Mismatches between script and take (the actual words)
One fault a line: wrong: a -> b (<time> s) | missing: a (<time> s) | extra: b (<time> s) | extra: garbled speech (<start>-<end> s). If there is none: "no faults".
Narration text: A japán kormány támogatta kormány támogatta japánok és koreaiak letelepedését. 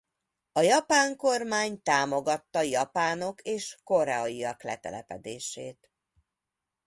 missing: kormány támogatta (2.6 s)